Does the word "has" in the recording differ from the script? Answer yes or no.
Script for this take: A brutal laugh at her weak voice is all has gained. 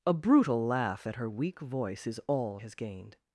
no